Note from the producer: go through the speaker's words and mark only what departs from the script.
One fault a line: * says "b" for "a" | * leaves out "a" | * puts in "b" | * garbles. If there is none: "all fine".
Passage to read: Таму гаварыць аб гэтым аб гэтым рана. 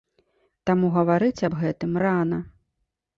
* leaves out "аб гэтым"